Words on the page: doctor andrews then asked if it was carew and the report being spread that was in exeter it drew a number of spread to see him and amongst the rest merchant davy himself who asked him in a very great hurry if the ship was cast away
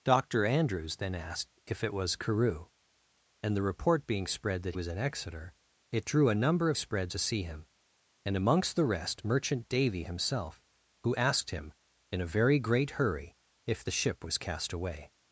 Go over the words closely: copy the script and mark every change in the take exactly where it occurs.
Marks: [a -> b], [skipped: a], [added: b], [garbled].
doctor andrews then asked if it was carew and the report being spread that was in exeter it drew a number of spread to see him and amongst the rest merchant davy himself who asked him in a very great hurry if the ship was cast away